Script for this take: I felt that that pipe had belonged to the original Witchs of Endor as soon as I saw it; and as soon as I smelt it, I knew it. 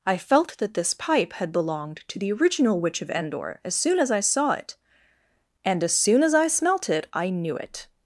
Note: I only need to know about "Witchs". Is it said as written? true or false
false